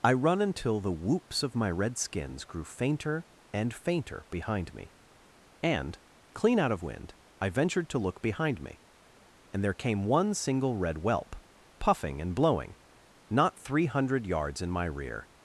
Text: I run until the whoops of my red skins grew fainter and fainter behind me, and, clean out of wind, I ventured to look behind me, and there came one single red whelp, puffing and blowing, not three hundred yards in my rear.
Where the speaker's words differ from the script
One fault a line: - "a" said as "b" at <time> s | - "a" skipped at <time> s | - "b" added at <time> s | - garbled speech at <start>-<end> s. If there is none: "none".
none